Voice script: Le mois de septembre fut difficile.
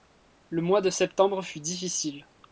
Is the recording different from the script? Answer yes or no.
no